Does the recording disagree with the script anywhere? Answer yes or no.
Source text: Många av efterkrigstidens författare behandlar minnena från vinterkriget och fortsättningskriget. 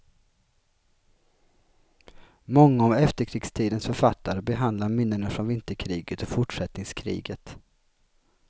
no